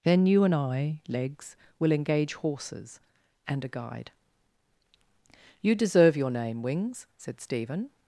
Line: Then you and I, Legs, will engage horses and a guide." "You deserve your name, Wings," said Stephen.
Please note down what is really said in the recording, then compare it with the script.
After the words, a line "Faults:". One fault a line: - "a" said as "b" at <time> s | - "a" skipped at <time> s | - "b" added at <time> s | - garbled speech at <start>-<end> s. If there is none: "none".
Then you and I, Legs, will engage horses and a guide." "You deserve your name, Wings," said Stephen.
Faults:
none